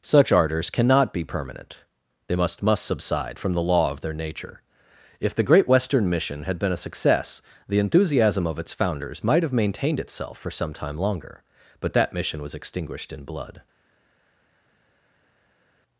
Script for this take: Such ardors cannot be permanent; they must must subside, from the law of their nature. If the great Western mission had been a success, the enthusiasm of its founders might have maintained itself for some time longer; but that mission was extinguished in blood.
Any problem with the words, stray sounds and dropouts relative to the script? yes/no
no